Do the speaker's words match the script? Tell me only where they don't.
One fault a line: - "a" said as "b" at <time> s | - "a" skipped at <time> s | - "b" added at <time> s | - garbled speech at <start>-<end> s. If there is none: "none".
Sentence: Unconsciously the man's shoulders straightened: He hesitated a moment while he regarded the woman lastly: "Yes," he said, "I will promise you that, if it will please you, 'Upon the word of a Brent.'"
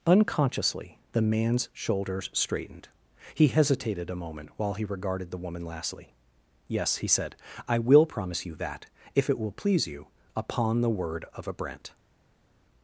none